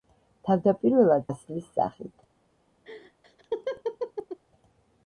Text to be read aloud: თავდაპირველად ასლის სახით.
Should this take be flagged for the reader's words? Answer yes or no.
no